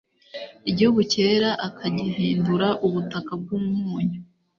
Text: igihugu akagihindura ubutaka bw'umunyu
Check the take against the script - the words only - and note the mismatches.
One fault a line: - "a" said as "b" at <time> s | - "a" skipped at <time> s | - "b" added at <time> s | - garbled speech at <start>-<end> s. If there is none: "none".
- "cyera" added at 1.1 s